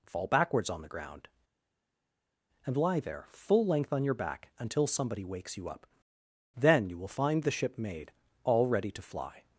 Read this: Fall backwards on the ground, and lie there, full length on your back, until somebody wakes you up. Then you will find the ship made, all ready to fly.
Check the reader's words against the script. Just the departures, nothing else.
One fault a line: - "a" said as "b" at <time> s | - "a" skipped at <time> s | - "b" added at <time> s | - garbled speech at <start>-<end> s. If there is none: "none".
none